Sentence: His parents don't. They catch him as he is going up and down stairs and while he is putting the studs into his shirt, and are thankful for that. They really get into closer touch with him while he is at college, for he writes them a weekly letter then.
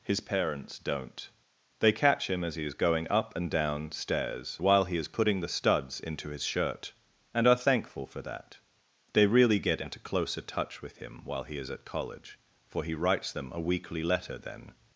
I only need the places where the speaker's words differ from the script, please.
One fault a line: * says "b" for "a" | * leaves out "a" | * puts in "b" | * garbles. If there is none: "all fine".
* leaves out "and"